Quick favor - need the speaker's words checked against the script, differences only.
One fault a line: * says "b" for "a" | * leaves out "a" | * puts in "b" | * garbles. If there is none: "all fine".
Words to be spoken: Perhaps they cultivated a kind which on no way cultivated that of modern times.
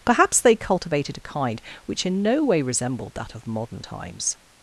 * says "in" for "on"
* says "resembled" for "cultivated"